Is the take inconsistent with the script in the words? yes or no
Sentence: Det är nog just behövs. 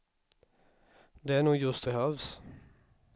no